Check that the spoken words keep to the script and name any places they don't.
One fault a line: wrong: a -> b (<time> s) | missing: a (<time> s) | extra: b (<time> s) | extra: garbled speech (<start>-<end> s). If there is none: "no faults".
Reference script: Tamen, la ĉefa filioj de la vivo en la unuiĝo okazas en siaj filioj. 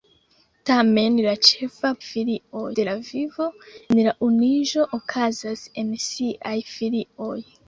no faults